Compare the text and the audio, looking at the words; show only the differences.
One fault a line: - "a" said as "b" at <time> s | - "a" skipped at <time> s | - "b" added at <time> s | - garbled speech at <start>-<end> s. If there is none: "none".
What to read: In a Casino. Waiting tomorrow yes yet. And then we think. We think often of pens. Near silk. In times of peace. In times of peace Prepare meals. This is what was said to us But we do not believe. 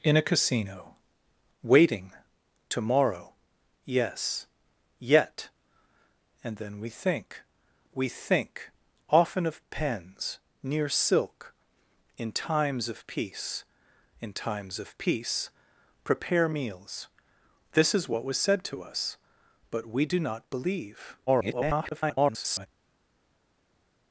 - garbled speech at 21.3-22.7 s